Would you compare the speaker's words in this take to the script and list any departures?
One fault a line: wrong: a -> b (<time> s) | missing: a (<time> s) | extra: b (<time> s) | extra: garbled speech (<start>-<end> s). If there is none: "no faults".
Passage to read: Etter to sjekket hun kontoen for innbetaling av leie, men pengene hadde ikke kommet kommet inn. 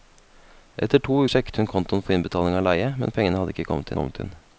no faults